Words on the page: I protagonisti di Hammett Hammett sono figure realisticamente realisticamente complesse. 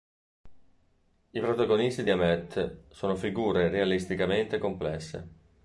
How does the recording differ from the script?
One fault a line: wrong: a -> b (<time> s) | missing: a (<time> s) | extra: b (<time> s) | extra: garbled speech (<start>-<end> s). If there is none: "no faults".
missing: Hammett (2.8 s)
missing: realisticamente (4.6 s)